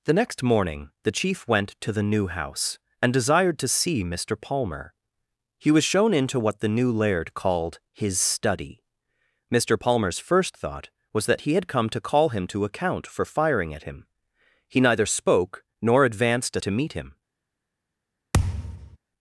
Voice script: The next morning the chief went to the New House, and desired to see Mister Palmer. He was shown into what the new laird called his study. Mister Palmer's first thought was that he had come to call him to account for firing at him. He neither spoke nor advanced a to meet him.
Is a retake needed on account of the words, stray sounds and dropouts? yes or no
yes